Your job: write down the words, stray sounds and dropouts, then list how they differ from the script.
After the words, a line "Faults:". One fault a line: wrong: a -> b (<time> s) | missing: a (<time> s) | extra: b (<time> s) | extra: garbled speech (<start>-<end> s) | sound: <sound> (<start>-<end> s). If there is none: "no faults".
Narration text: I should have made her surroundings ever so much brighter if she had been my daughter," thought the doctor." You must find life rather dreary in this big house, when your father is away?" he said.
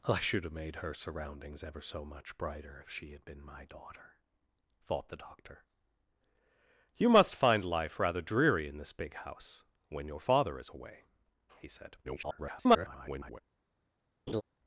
I should have made her surroundings ever so much brighter if she had been my daughter," thought the doctor." You must find life rather dreary in this big house, when your father is away?" he said. [garbled]
Faults:
extra: garbled speech (12.0-13.4 s)
sound: laugh (14.3-14.4 s)